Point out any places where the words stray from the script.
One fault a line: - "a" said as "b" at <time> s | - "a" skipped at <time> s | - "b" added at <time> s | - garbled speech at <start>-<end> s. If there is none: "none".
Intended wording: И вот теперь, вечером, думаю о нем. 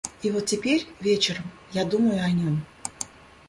- "я" added at 1.7 s